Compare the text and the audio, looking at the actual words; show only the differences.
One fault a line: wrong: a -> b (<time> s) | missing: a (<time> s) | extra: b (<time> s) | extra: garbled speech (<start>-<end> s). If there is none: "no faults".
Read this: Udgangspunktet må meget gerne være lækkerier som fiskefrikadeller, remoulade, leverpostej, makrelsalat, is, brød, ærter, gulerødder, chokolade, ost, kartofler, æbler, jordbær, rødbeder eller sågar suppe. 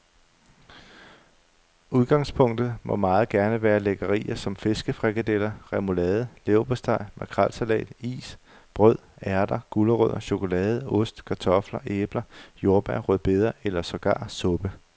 no faults